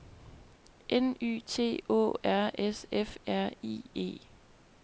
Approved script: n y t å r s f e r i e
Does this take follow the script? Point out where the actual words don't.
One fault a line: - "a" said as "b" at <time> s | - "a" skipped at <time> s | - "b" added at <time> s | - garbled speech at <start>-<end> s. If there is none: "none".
- "e" skipped at 3.2 s